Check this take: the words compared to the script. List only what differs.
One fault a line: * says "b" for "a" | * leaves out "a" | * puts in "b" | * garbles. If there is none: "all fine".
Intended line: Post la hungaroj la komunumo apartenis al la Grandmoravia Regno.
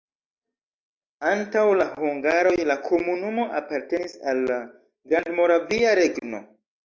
* says "Antaŭ" for "Post"